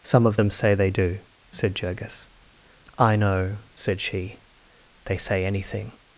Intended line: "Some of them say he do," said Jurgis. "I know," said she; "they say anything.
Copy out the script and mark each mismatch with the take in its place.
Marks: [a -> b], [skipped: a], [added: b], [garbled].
"Some of them say [he -> they] do," said Jurgis. "I know," said she; "they say anything.